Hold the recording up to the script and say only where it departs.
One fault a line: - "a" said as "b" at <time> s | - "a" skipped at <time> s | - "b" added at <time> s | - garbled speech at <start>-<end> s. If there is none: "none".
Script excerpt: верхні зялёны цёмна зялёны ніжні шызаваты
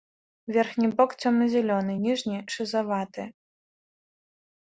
- "зялёны" said as "бок" at 1.0 s